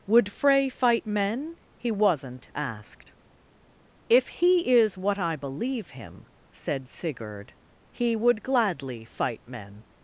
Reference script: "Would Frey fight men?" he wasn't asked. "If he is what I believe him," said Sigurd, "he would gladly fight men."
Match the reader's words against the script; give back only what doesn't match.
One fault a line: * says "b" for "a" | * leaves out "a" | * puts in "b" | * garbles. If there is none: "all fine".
all fine